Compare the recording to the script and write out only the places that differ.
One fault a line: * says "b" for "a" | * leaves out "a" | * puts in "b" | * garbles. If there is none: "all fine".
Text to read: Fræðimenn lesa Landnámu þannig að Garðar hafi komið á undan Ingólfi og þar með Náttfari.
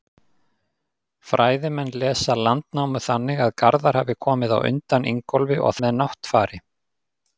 * leaves out "þar"